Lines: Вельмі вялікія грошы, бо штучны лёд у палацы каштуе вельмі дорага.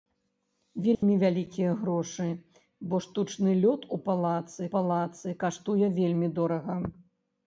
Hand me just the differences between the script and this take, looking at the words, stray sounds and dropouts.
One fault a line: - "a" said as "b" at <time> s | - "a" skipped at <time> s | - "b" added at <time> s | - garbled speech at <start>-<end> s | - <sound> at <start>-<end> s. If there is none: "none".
- dropout at 0.9-1.0 s
- "палацы" added at 4.7 s